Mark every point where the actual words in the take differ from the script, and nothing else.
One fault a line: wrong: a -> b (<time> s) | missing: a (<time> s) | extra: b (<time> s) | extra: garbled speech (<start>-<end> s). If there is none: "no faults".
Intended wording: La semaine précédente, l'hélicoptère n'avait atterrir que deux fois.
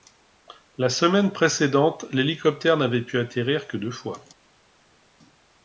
extra: pu (3.0 s)